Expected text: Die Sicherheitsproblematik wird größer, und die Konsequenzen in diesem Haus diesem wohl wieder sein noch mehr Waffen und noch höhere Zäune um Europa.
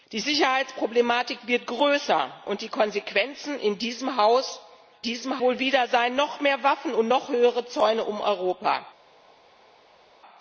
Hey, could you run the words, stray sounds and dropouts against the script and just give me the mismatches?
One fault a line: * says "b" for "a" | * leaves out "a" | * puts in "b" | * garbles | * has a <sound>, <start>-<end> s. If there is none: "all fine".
all fine